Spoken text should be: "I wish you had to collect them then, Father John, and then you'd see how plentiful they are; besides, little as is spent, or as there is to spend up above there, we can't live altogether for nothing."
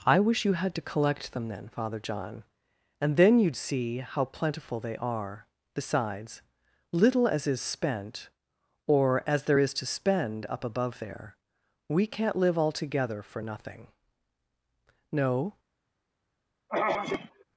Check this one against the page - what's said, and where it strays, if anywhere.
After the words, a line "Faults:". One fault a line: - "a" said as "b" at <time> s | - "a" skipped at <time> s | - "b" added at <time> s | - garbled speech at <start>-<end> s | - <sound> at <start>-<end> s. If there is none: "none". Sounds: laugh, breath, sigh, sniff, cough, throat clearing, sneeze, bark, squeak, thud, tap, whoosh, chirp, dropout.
"I wish you had to collect them then, Father John, and then you'd see how plentiful they are; besides, little as is spent, or as there is to spend up above there, we can't live altogether for nothing." "No
Faults:
- "No" added at 15.1 s
- throat clearing at 16.7-17.4 s